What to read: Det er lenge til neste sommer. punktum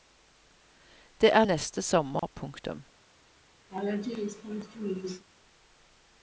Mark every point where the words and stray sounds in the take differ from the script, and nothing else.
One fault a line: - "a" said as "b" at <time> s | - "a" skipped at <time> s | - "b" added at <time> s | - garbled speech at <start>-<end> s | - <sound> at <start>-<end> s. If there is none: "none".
- "lenge til" skipped at 1.4 s
- dropout at 2.2-2.2 s
- laugh at 3.7-5.2 s